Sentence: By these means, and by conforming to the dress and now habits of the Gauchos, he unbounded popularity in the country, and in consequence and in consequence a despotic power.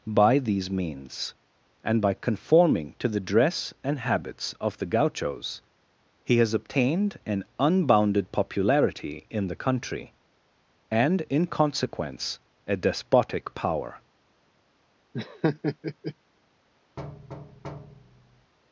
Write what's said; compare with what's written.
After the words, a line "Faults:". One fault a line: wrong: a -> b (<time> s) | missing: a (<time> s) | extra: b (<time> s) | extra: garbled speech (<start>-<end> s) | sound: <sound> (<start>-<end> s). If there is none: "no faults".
By these means, and by conforming to the dress and habits of the Gauchos, he has obtained an unbounded popularity in the country, and in consequence a despotic power.
Faults:
missing: now (4.0 s)
extra: has obtained an (6.4 s)
missing: and in consequence (12.4 s)
sound: laugh (15.1-16.1 s)
sound: thud (17.0-18.5 s)